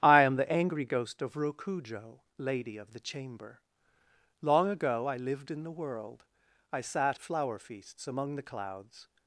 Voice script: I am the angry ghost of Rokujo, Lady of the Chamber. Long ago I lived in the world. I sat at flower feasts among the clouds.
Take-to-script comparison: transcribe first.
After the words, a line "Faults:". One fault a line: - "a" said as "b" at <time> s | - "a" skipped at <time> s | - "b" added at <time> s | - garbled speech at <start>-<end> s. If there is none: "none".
I am the angry ghost of Rokujo, Lady of the Chamber. Long ago I lived in the world. I sat flower feasts among the clouds.
Faults:
- "at" skipped at 7.2 s